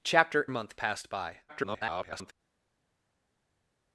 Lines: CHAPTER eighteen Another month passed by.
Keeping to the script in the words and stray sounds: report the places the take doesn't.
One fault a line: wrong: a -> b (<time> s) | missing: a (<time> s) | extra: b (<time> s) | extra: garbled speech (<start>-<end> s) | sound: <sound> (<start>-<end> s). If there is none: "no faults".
missing: eighteen Another (0.5 s)
extra: garbled speech (1.5-2.3 s)